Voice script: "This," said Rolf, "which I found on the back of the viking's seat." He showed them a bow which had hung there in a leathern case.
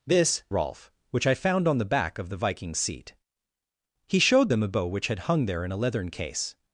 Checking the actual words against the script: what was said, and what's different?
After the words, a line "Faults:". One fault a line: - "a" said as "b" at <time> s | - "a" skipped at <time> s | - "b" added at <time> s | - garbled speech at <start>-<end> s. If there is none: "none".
"This," Rolf, "which I found on the back of the viking's seat." He showed them a bow which had hung there in a leathern case.
Faults:
- "said" skipped at 0.4 s